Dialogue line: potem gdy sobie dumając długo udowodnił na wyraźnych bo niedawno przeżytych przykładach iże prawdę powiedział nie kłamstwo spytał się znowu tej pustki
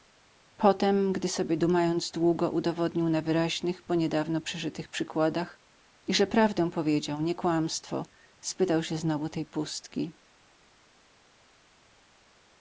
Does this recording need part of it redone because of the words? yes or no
no